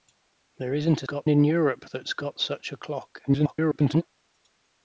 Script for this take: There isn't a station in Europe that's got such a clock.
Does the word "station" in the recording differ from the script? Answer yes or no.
yes